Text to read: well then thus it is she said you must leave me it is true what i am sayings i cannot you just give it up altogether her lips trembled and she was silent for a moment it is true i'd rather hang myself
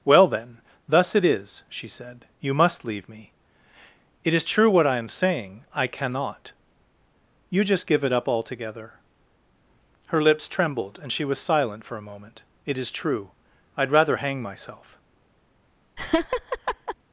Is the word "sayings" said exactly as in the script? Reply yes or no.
no